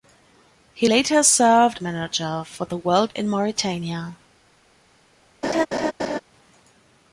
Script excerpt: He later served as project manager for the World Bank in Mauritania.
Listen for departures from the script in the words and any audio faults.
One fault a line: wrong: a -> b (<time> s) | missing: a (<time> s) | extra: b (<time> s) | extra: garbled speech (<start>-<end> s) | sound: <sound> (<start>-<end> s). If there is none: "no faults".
missing: as project (1.8 s)
missing: Bank (3.1 s)
sound: laugh (5.4-6.2 s)